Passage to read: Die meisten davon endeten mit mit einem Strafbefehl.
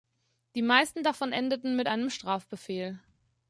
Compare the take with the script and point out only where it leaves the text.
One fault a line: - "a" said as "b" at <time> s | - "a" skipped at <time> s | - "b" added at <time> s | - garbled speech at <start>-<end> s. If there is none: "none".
- "mit" skipped at 1.9 s